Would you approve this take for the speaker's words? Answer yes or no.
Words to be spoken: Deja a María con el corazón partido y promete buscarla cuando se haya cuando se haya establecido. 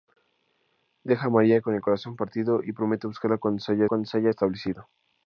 yes